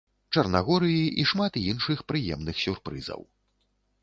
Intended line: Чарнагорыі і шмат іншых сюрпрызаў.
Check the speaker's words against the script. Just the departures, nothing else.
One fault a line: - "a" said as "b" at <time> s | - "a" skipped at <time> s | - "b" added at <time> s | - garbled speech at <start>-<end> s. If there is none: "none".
- "прыемных" added at 2.1 s